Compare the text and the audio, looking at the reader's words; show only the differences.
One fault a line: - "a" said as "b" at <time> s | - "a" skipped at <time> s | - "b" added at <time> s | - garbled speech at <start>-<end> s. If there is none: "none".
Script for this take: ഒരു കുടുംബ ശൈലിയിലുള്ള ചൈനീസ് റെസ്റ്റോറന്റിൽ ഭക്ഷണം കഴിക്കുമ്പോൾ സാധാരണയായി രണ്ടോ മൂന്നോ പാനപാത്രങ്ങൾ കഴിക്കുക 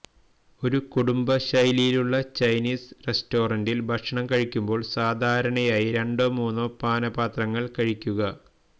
none